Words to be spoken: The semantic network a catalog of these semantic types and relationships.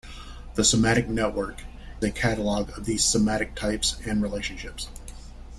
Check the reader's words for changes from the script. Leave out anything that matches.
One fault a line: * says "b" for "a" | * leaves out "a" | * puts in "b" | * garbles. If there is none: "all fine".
all fine